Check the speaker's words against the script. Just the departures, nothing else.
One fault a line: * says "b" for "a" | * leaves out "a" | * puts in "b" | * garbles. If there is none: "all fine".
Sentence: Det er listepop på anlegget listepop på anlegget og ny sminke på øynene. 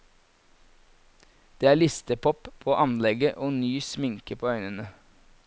* leaves out "listepop på anlegget"